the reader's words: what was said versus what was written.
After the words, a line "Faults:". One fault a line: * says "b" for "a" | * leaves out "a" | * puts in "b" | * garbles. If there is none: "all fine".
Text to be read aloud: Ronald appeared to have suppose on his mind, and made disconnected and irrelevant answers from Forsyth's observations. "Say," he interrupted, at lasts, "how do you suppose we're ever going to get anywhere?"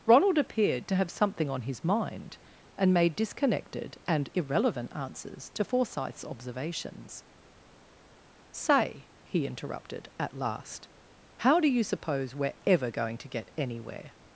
Ronald appeared to have something on his mind, and made disconnected and irrelevant answers to Forsyth's observations. "Say," he interrupted, at last, "how do you suppose we're ever going to get anywhere?"
Faults:
* says "something" for "suppose"
* says "to" for "from"
* says "last" for "lasts"